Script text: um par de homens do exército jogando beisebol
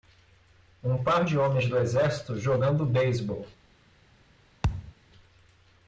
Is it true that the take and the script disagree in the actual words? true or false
false